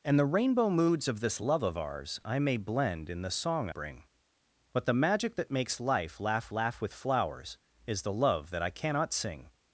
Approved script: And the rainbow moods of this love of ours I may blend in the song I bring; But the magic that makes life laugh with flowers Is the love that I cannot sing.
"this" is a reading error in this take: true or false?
false